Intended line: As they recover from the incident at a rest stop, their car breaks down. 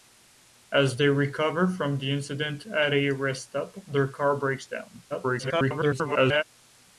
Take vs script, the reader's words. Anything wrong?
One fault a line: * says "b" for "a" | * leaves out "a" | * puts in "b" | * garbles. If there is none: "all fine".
* garbles